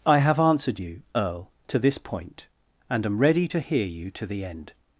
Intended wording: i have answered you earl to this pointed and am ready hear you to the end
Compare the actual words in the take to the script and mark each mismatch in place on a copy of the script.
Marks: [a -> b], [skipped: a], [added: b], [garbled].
i have answered you earl to this [pointed -> point] and am ready [added: to] hear you to the end